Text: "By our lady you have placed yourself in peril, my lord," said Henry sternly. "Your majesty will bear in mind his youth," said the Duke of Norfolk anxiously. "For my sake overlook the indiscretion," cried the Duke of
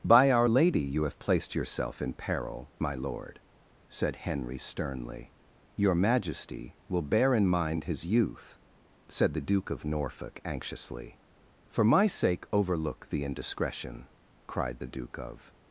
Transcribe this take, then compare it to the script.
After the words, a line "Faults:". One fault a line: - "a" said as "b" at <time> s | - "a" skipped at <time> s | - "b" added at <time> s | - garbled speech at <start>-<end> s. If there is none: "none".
"By our lady you have placed yourself in peril, my lord," said Henry sternly. "Your majesty will bear in mind his youth," said the Duke of Norfolk anxiously. "For my sake overlook the indiscretion," cried the Duke of
Faults:
none